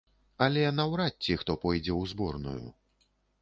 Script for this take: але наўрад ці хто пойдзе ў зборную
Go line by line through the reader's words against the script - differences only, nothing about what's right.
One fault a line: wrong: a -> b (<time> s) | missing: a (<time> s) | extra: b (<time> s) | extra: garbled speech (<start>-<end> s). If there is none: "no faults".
no faults